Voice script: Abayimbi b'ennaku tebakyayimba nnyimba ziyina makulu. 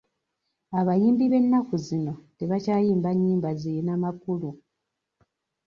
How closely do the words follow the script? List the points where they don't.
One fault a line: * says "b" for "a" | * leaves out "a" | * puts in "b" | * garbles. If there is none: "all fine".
* puts in "zino"